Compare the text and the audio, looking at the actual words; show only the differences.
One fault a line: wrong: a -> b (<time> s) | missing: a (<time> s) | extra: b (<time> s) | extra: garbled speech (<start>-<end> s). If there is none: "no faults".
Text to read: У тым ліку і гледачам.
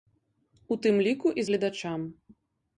no faults